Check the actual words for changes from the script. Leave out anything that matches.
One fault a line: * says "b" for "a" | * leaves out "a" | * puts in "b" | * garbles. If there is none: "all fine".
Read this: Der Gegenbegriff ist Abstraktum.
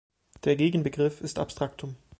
all fine